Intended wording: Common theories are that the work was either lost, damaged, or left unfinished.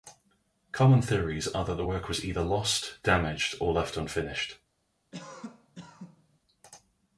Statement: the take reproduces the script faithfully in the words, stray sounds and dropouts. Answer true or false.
false